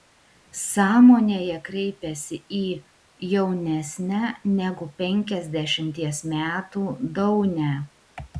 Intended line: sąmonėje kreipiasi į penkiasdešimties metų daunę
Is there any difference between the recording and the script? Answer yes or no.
yes